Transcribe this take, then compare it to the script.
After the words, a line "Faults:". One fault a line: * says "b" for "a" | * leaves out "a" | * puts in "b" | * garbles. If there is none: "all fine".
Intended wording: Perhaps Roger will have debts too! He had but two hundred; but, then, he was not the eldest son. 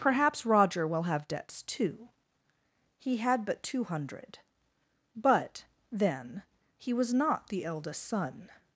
Perhaps Roger will have debts too! He had but two hundred; but, then, he was not the eldest son.
Faults:
all fine